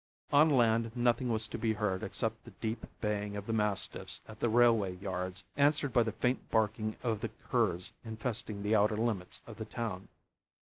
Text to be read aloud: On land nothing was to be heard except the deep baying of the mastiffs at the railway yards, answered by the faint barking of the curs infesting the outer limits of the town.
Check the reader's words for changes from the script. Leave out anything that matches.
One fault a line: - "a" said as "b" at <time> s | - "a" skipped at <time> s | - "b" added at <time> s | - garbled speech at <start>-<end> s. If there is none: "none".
none